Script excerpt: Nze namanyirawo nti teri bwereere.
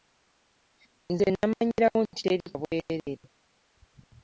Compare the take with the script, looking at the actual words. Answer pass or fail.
pass